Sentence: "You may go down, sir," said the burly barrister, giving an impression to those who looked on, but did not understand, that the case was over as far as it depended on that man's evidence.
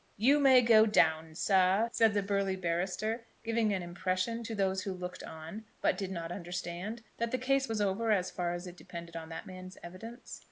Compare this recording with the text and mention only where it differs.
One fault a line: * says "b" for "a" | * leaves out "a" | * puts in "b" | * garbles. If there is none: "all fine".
all fine